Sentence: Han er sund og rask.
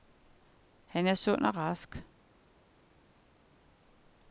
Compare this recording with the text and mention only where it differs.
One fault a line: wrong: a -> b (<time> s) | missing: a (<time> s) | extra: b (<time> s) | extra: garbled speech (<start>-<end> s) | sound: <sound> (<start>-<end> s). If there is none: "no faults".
no faults